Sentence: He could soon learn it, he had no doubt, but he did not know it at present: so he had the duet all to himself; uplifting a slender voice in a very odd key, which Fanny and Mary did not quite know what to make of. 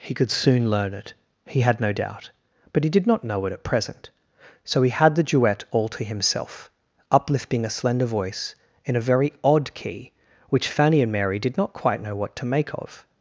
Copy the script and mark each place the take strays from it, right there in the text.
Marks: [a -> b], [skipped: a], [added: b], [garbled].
He could soon learn it, he had no doubt, but he did not know it at present: so he had the duet all to himself; uplifting a slender voice in a very odd key, which Fanny and Mary did not quite know what to make of.